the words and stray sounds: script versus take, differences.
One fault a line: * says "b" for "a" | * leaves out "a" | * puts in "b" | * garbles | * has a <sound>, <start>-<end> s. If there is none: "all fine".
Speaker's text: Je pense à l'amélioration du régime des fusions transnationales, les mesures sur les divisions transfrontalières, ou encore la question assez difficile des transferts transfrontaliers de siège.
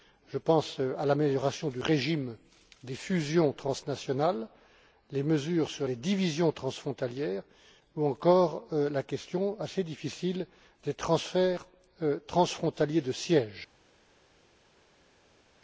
all fine